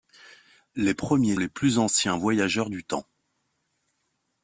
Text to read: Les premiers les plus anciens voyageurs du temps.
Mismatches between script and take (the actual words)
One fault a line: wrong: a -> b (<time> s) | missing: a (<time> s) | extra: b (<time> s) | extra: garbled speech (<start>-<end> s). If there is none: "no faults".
no faults